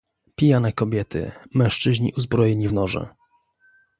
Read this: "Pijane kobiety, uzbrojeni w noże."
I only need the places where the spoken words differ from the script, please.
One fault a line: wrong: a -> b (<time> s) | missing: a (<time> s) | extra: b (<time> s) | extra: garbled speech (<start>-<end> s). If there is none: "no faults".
extra: mężczyźni (1.5 s)